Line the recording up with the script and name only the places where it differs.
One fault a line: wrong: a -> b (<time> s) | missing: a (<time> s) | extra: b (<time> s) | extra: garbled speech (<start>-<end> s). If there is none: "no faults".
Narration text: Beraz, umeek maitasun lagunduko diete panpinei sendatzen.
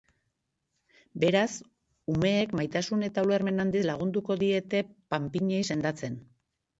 extra: eta ulermen handiz (3.1 s)